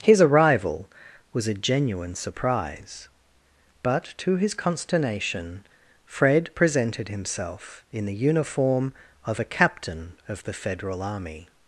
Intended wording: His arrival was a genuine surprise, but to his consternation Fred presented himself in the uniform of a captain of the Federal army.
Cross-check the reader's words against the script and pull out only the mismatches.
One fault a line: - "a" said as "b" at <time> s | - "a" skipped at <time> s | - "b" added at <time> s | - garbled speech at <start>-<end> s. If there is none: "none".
none